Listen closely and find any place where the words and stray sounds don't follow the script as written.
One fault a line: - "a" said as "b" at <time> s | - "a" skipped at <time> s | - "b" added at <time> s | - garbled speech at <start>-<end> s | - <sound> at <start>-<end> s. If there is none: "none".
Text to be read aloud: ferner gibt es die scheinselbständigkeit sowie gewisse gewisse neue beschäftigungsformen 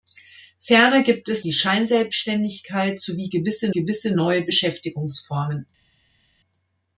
none